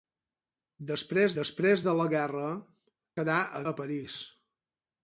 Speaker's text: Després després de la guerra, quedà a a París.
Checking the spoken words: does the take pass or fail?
pass